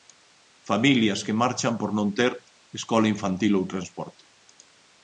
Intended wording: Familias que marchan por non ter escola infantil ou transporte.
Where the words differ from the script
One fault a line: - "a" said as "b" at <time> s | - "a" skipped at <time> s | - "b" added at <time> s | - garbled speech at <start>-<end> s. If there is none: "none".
none